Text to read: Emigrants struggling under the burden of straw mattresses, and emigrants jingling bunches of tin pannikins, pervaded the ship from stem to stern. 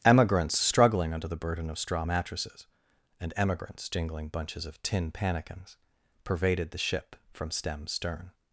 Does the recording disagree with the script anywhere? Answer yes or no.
yes